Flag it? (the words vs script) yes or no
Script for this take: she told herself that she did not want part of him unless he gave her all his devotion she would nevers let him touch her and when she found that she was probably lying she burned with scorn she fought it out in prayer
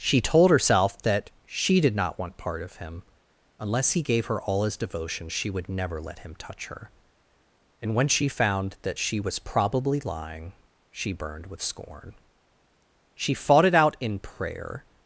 yes